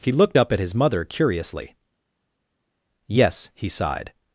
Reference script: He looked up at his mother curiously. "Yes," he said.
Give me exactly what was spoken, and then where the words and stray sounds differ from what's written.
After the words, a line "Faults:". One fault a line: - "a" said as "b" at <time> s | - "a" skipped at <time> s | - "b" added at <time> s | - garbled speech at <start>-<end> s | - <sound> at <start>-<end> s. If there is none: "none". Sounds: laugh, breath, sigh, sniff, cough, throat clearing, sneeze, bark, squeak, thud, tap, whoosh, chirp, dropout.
He looked up at his mother curiously. "Yes," he sighed.
Faults:
- "said" said as "sighed" at 3.7 s